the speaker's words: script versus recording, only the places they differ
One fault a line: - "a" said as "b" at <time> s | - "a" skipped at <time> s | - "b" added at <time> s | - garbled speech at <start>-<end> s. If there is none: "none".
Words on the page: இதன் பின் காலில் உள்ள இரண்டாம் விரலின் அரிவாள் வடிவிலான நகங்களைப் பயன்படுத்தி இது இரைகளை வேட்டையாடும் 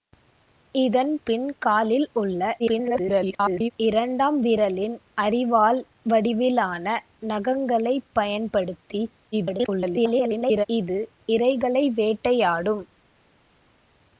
- garbled speech at 2.6-3.7 s
- garbled speech at 9.3-10.7 s